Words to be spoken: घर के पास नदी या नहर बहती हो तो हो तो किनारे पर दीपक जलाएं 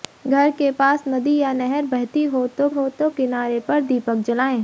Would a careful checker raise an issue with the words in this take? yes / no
no